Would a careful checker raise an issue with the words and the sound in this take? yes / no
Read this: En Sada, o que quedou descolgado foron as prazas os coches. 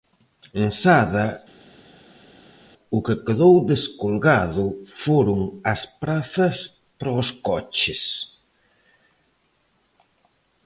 yes